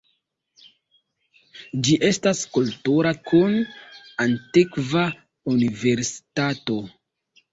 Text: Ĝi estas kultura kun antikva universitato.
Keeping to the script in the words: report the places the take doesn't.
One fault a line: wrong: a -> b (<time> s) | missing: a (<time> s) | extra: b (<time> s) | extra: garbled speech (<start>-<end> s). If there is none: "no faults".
no faults